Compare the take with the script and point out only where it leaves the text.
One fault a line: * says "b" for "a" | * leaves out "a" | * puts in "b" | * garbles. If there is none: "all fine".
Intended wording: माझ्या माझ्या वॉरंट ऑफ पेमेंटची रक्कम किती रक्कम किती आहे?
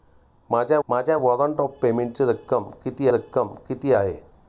all fine